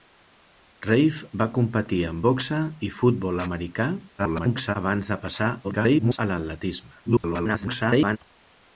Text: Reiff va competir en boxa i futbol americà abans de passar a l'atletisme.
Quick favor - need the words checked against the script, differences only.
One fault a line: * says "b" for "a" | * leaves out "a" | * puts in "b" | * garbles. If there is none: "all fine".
* garbles
* garbles
* garbles